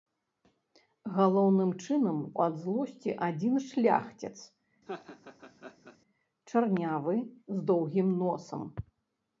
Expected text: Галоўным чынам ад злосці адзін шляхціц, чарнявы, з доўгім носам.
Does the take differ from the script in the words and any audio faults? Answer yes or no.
yes